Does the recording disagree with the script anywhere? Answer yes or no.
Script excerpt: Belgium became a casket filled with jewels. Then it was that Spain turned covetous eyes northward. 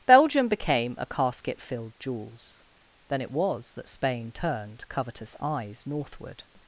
yes